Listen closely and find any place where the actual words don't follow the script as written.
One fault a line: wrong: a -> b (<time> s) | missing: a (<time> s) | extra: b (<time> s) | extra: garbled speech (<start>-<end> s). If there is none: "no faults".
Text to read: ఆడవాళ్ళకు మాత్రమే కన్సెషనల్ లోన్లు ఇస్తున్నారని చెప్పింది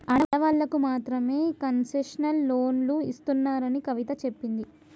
extra: కవిత (3.9 s)